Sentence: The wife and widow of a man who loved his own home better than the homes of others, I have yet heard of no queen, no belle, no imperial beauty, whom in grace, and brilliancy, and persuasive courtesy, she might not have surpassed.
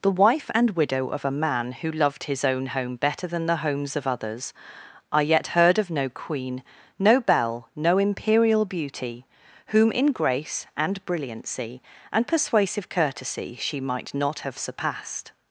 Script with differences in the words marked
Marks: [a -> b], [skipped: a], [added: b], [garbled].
The wife and widow of a man who loved his own home better than the homes of others, I [skipped: have] yet heard of no queen, no belle, no imperial beauty, whom in grace, and brilliancy, and persuasive courtesy, she might not have surpassed.